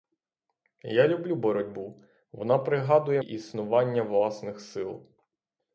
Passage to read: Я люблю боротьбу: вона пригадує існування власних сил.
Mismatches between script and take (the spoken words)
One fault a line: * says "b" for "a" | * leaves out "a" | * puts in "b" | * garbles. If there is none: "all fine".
all fine